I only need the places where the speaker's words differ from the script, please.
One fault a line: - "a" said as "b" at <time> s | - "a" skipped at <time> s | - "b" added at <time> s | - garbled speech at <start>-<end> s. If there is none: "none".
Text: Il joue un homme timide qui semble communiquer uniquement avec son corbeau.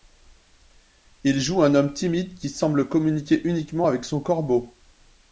none